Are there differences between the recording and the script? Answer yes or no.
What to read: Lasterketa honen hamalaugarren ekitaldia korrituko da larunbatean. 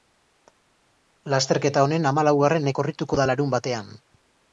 yes